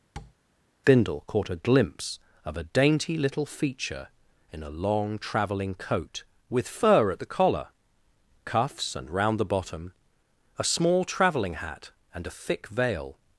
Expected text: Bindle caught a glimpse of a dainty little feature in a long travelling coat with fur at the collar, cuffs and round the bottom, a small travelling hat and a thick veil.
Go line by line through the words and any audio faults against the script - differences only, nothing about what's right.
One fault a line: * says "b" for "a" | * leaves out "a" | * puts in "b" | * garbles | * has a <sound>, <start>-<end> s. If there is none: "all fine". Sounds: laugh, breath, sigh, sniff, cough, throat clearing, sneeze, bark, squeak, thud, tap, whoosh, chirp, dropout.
* has a tap, 0.2-0.3 s